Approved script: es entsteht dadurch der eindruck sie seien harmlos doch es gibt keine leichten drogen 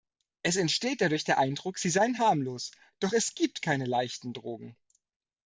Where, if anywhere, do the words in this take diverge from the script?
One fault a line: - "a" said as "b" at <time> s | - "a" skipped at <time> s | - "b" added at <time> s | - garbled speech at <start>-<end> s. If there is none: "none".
none